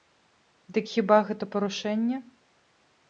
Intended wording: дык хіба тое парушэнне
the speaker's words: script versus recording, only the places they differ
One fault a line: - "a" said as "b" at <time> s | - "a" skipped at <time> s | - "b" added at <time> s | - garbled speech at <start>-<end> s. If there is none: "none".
- "тое" said as "гэта" at 1.3 s